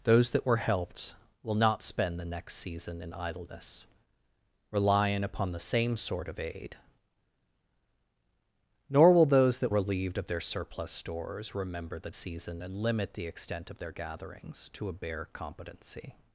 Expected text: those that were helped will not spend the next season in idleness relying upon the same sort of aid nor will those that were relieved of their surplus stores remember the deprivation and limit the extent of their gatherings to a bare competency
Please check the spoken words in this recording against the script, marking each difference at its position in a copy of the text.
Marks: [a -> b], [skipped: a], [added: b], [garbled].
those that were helped will not spend the next season in idleness relying upon the same sort of aid nor will those that [skipped: were] relieved of their surplus stores remember the [deprivation -> season] and limit the extent of their gatherings to a bare competency